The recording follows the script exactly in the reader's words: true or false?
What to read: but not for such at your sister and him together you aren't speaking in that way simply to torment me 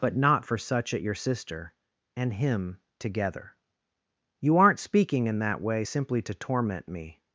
true